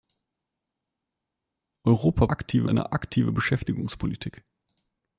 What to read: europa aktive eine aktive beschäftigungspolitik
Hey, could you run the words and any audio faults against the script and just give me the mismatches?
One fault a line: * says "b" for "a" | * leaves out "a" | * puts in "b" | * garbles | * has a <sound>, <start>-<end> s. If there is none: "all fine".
all fine